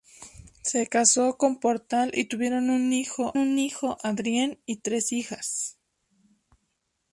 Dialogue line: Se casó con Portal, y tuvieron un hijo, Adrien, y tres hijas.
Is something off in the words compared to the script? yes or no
yes